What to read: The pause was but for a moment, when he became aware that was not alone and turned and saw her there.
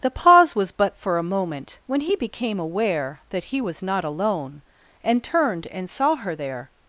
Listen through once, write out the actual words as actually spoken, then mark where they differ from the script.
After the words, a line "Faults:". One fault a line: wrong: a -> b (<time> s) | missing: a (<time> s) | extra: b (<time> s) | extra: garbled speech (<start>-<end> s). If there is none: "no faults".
The pause was but for a moment, when he became aware that he was not alone and turned and saw her there.
Faults:
extra: he (3.4 s)